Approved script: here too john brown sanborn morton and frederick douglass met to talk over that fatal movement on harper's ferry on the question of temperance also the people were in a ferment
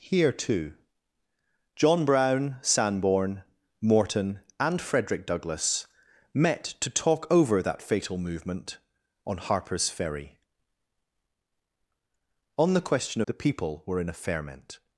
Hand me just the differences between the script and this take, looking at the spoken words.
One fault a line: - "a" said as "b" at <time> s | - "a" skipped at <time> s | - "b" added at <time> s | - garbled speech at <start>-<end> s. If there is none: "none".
- "of temperance also" skipped at 13.2 s